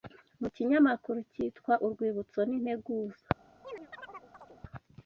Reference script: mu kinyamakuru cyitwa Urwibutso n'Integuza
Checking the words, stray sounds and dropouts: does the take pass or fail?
fail